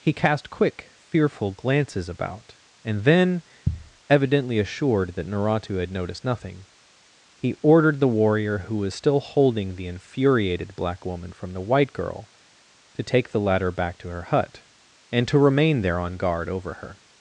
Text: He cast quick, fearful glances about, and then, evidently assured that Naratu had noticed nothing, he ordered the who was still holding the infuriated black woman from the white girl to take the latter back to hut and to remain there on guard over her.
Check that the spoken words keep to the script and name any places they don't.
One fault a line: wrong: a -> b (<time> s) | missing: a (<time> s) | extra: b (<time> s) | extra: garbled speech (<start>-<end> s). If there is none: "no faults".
extra: warrior (8.1 s)
extra: her (14.1 s)